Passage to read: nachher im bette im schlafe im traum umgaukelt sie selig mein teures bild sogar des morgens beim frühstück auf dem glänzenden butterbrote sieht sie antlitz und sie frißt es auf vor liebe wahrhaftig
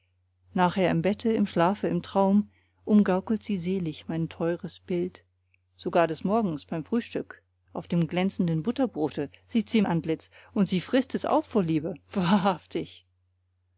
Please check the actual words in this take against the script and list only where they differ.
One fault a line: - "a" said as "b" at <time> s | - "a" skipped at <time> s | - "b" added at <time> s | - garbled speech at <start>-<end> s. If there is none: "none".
none